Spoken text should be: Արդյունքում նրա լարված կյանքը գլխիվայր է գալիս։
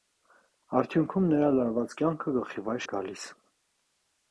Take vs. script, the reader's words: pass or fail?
pass